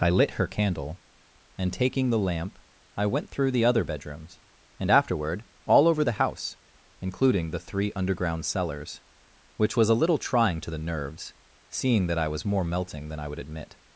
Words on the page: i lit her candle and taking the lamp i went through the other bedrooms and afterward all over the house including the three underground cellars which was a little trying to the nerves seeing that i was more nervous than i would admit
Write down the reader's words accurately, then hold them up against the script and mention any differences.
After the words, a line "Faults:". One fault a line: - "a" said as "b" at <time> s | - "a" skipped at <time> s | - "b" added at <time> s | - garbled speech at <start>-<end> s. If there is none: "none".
i lit her candle and taking the lamp i went through the other bedrooms and afterward all over the house including the three underground cellars which was a little trying to the nerves seeing that i was more melting than i would admit
Faults:
- "nervous" said as "melting" at 12.6 s